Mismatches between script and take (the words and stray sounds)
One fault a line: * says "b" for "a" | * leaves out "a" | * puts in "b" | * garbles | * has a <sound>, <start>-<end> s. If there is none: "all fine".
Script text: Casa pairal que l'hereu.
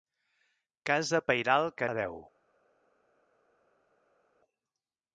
all fine